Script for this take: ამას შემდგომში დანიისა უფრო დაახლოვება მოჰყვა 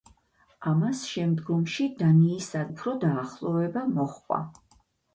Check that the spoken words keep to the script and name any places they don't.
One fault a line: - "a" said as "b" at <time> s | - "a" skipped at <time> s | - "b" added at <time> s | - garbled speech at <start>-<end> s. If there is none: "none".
none